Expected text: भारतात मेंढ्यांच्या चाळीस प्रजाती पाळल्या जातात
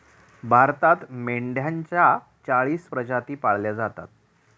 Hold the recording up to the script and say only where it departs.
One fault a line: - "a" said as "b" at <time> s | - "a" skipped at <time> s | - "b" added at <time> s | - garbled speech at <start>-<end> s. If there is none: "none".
none